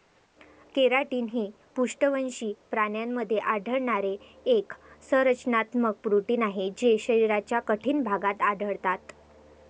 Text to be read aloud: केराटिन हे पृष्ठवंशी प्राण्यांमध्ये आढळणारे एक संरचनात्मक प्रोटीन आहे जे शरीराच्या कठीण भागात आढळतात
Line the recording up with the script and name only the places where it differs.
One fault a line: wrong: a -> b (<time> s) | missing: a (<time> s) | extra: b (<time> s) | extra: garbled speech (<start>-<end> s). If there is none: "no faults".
no faults